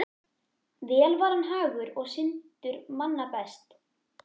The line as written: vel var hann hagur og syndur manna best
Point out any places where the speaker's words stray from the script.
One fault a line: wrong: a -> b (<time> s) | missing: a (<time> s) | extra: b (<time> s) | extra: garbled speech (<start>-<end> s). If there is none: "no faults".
no faults